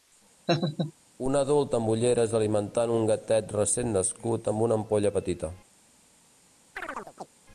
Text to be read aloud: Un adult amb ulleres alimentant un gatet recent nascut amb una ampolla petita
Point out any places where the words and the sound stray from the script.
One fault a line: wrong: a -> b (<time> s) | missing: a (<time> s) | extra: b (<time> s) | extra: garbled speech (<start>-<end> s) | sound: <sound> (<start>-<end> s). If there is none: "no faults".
sound: laugh (0.5-0.9 s)
sound: chirp (6.8-7.3 s)